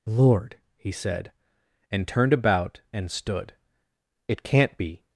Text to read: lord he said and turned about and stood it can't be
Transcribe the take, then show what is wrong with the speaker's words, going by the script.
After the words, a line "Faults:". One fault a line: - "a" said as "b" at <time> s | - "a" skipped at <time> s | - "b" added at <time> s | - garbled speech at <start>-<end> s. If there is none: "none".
lord he said and turned about and stood it can't be
Faults:
none